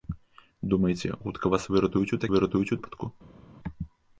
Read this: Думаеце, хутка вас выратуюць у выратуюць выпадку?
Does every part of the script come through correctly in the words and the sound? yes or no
yes